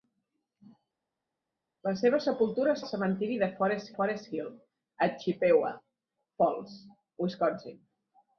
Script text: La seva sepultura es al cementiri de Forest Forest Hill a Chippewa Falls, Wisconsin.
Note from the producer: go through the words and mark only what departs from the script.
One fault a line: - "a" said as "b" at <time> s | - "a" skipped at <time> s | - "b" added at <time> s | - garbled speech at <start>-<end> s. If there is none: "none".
none